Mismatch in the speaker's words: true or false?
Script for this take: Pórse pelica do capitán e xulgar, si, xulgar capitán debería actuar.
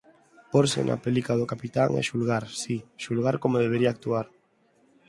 true